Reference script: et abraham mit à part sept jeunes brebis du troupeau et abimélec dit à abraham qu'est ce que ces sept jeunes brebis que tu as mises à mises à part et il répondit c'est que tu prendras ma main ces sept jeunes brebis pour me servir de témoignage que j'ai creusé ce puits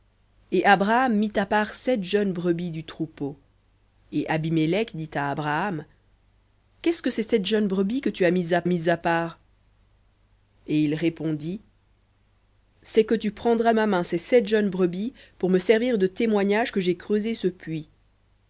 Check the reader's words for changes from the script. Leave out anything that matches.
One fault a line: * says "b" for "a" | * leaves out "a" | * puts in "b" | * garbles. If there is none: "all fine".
all fine